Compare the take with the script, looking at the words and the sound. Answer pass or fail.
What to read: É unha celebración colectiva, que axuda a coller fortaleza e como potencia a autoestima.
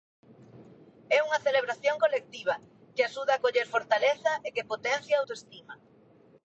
fail